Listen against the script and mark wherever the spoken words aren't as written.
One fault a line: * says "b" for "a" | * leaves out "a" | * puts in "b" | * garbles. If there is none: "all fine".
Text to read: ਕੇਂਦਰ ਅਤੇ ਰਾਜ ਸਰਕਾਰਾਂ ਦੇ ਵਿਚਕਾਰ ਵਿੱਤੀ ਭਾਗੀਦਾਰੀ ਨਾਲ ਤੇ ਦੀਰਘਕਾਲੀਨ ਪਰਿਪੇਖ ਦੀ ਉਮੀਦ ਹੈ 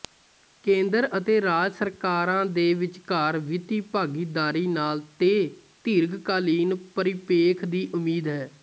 all fine